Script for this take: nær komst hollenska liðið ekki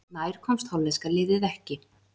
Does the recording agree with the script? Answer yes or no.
yes